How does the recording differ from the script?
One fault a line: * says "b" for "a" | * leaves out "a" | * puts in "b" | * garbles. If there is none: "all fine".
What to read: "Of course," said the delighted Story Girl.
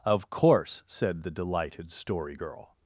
all fine